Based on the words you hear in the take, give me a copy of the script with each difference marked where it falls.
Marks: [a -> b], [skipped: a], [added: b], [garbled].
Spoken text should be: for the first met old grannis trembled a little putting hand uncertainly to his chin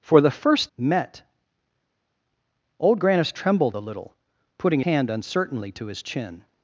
for the first met old grannis trembled a little putting hand uncertainly to his chin